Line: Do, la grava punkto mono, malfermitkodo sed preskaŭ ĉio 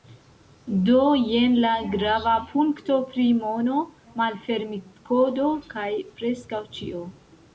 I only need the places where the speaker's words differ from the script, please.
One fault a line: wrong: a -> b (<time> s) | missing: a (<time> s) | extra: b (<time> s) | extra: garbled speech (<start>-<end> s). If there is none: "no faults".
extra: jen (1.3 s)
extra: pri (3.1 s)
wrong: sed -> kaj (5.8 s)